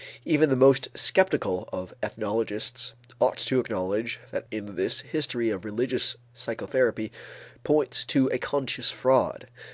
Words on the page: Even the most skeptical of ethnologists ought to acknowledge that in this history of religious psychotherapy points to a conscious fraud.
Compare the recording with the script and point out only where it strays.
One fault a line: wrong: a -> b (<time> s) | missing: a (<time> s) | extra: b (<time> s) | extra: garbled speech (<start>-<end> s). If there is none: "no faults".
no faults